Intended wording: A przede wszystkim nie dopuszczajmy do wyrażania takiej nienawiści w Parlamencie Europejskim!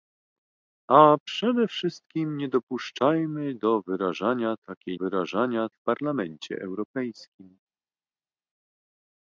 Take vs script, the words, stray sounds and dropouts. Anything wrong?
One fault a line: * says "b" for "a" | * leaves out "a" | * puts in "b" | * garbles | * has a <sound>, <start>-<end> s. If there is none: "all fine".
* says "wyrażania" for "nienawiści"